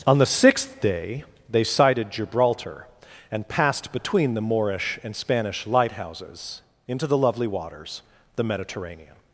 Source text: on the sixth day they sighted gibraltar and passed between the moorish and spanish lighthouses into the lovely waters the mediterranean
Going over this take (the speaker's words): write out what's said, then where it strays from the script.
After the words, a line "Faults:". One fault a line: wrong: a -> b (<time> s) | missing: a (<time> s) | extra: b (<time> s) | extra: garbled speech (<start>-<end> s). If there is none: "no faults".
on the sixth day they sighted gibraltar and passed between the moorish and spanish lighthouses into the lovely waters the mediterranean
Faults:
no faults